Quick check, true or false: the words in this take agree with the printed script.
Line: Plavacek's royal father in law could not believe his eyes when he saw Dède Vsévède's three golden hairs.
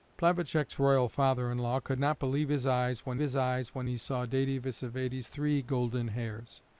false